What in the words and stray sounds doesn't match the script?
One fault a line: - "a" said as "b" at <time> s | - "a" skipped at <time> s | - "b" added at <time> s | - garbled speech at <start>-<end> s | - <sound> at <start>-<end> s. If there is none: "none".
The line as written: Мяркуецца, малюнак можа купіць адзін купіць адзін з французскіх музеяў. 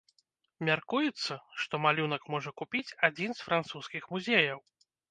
- "што" added at 1.6 s
- "купіць адзін" skipped at 3.3 s